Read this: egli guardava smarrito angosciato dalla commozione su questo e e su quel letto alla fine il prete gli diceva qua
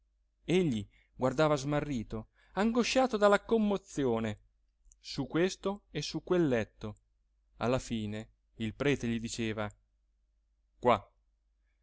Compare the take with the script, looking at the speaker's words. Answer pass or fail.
fail